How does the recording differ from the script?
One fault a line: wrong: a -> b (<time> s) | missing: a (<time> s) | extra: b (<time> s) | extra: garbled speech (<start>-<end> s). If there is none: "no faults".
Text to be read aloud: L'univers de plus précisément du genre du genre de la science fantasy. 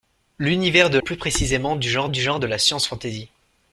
no faults